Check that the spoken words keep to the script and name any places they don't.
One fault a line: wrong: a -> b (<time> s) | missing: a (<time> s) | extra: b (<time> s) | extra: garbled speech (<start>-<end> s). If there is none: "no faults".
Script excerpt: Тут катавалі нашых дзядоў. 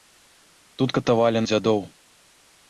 missing: нашых (1.4 s)